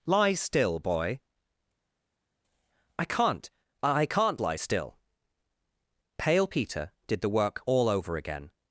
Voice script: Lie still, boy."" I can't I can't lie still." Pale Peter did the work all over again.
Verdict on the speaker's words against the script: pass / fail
pass